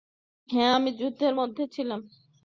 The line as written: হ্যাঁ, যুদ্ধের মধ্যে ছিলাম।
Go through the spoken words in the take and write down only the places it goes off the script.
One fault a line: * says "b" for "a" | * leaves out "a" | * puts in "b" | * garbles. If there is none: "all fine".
* puts in "আমি"